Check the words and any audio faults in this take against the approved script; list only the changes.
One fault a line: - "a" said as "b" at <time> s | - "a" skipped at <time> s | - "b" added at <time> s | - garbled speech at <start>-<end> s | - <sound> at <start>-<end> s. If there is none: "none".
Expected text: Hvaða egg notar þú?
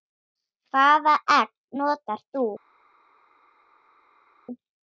none